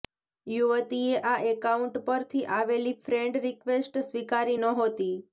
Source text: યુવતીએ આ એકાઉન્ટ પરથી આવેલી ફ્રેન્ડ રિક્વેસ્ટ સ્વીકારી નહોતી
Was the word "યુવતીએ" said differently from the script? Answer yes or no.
no